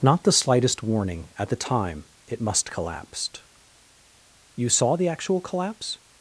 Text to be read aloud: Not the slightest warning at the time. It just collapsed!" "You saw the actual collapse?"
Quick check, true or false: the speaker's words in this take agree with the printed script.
false